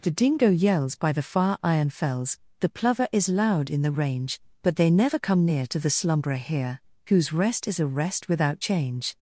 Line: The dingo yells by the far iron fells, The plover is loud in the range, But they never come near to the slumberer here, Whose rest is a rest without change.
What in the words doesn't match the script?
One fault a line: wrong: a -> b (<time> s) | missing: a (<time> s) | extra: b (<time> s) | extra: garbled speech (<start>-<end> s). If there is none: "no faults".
no faults